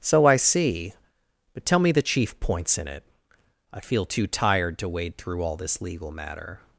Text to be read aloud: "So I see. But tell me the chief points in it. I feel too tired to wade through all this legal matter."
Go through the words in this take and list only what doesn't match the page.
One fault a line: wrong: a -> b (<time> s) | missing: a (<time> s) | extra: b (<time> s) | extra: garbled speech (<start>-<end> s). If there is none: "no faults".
no faults